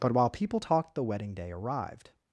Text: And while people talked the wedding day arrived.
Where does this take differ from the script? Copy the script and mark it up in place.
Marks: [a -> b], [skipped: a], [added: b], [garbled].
[And -> But] while people talked the wedding day arrived.